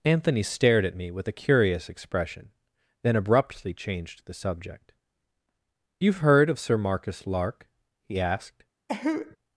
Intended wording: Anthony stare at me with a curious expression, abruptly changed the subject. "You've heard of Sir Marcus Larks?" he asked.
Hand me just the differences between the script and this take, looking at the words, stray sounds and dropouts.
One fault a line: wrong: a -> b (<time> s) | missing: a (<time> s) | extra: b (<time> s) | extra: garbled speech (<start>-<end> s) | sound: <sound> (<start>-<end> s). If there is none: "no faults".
wrong: stare -> stared (0.4 s)
extra: then (3.0 s)
wrong: Larks -> Lark (7.3 s)
sound: cough (8.9-9.4 s)